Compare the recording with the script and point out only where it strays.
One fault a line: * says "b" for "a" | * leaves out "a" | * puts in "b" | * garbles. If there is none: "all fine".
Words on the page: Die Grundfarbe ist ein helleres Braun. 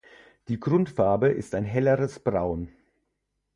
all fine